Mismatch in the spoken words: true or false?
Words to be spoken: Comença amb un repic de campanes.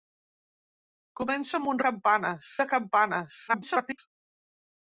true